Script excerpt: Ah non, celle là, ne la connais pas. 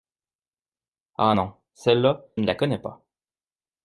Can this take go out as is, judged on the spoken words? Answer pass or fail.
pass